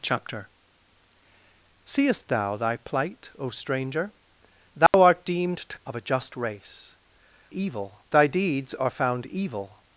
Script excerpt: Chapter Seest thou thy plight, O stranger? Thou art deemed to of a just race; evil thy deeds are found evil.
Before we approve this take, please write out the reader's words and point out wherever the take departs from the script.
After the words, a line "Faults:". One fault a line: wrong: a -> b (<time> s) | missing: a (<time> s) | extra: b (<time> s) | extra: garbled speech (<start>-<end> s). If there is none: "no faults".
Chapter Seest thou thy plight, O stranger? Thou art deemed to of a just race; evil thy deeds are found evil.
Faults:
no faults